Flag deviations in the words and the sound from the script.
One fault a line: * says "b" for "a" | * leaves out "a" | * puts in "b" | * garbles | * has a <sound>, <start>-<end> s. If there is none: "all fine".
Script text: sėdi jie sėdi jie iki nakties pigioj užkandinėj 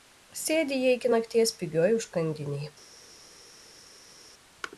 * leaves out "sėdi jie"